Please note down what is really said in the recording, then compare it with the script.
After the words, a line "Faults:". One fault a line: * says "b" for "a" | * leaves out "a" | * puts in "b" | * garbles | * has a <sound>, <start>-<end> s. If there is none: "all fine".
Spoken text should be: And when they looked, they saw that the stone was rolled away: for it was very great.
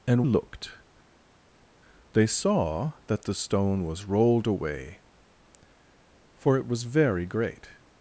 And looked, they saw that the stone was rolled away: for it was very great.
Faults:
* leaves out "when they"